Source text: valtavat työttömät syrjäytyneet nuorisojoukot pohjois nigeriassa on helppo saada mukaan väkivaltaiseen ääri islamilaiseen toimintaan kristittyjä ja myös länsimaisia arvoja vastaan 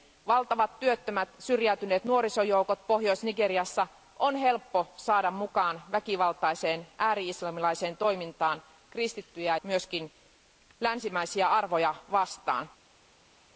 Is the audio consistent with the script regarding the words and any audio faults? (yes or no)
no